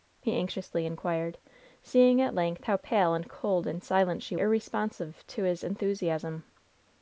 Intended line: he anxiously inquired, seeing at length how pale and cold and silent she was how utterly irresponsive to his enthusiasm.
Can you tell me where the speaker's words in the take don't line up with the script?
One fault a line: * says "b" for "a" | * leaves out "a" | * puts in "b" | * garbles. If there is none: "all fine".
* leaves out "was how utterly"